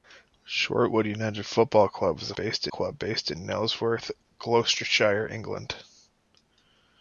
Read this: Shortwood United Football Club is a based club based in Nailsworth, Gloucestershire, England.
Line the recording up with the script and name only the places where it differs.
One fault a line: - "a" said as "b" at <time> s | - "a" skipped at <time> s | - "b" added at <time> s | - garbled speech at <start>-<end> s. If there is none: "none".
none